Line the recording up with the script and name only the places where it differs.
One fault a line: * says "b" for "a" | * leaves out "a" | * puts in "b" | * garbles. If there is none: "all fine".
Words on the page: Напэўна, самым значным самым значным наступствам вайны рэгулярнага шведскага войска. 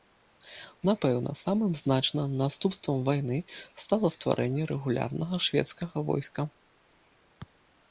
* says "наступствам вайны стала стварэнне" for "самым значным наступствам вайны"